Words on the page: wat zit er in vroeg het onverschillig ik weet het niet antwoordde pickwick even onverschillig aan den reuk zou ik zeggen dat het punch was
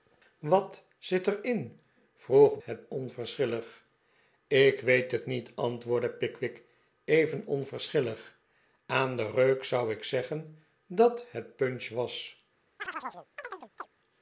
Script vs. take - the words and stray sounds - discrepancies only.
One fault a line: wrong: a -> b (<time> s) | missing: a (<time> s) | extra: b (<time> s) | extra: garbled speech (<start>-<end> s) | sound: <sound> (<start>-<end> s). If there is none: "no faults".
sound: chirp (12.8-13.9 s)